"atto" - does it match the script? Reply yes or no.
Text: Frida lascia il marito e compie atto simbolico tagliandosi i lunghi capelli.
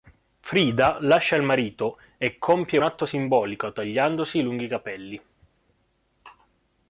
yes